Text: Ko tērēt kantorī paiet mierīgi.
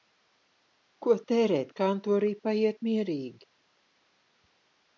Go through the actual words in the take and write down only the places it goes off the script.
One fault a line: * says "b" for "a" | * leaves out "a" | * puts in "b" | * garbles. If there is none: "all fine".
all fine